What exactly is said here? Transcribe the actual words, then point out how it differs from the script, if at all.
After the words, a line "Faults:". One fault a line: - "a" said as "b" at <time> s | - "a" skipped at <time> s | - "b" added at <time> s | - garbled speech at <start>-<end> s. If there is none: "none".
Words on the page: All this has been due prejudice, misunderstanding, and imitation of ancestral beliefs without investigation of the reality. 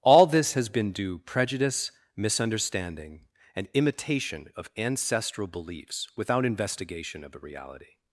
All this has been due prejudice, misunderstanding, and imitation of ancestral beliefs without investigation of the reality.
Faults:
none